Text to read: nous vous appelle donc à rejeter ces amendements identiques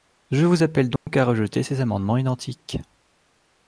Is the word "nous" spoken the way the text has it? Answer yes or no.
no